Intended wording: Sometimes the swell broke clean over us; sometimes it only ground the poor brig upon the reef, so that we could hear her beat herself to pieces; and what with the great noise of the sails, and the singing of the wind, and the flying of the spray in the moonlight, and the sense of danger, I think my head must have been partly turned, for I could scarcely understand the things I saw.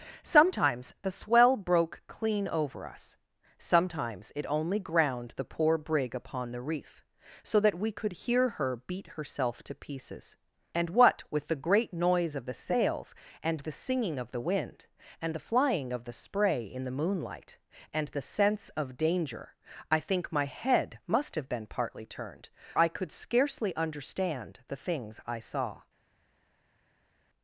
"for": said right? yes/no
no